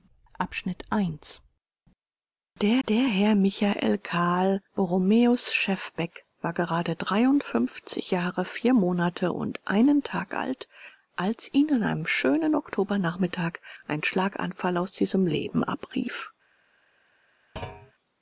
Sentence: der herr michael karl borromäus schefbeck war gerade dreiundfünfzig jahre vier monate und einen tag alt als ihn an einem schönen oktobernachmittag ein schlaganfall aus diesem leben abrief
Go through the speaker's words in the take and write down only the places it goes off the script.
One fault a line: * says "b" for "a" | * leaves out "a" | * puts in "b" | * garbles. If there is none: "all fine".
* puts in "der"